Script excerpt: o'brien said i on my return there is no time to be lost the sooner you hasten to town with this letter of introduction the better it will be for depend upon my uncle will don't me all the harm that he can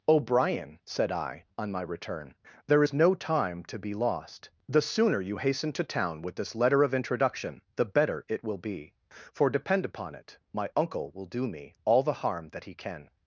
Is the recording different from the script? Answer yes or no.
yes